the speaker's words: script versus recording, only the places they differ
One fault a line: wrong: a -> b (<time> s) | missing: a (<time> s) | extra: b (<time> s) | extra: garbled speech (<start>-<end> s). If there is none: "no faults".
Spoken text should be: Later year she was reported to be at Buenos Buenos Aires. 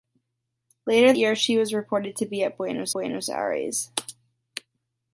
no faults